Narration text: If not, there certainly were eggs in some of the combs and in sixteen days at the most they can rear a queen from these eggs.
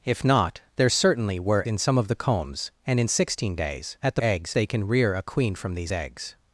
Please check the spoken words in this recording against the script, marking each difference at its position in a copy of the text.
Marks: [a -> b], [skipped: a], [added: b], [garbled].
If not, there certainly were [skipped: eggs] in some of the combs and in sixteen days at the [most -> eggs] they can rear a queen from these eggs.